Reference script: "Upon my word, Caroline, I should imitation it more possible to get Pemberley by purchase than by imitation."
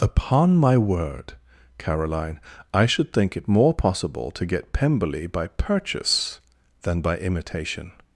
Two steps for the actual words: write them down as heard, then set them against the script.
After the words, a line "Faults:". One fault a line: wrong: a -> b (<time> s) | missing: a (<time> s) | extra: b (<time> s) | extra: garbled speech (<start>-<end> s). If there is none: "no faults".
"Upon my word, Caroline, I should think it more possible to get Pemberley by purchase than by imitation."
Faults:
wrong: imitation -> think (3.1 s)